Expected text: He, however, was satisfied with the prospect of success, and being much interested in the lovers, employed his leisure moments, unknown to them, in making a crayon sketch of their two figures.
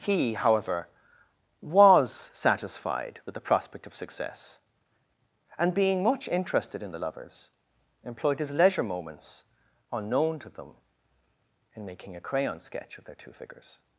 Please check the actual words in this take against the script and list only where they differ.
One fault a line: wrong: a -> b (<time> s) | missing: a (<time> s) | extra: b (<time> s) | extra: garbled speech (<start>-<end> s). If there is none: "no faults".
no faults